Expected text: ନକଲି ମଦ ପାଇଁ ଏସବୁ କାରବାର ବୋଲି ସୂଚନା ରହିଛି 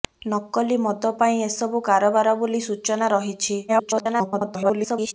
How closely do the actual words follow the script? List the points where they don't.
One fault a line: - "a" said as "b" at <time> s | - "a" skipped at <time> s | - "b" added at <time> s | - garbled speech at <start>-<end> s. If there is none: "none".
- garbled speech at 3.7-5.1 s